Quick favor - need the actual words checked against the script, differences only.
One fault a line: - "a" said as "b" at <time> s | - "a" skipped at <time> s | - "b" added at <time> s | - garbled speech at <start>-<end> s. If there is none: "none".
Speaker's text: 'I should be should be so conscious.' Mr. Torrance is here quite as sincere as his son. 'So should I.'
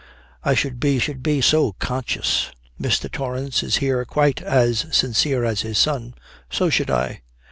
none